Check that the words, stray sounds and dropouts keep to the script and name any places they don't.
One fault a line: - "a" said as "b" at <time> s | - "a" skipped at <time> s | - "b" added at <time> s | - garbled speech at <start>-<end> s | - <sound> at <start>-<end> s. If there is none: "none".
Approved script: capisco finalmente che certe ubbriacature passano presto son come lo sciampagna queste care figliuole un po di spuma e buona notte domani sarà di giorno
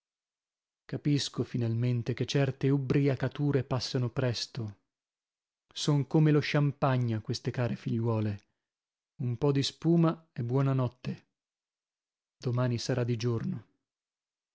none